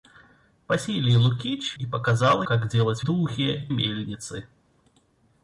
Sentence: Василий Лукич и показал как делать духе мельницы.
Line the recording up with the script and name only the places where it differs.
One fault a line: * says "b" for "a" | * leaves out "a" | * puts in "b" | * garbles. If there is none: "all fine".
all fine